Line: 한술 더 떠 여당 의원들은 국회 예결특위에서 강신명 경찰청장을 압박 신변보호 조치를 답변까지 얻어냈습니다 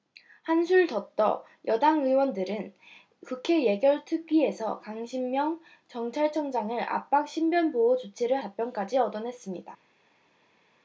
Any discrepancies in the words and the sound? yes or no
no